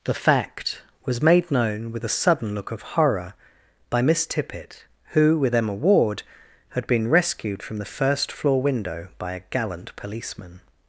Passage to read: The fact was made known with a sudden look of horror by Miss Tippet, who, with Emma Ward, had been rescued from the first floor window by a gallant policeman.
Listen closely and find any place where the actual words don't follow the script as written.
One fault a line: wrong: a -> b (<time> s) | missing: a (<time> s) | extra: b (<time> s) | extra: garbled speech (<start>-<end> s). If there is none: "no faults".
no faults